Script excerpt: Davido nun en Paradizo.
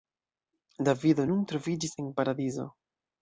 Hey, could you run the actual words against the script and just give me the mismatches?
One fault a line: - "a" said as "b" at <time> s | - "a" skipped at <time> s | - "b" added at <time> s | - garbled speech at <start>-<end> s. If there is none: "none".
- "troviĝis" added at 1.5 s